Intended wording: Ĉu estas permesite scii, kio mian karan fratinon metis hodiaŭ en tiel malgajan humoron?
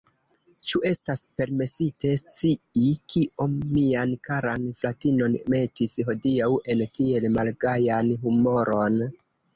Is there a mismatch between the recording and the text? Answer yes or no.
no